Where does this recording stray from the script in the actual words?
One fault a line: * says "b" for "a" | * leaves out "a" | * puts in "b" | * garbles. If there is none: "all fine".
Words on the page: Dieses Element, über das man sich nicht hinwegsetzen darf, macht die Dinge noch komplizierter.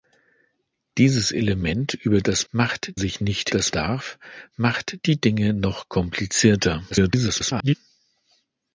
* says "macht" for "man"
* says "das" for "hinwegsetzen"
* garbles